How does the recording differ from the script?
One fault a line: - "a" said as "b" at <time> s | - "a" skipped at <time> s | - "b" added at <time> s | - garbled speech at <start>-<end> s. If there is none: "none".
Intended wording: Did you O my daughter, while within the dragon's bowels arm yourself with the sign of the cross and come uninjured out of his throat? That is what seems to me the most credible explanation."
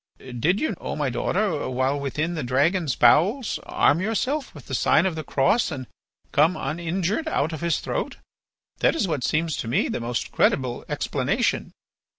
none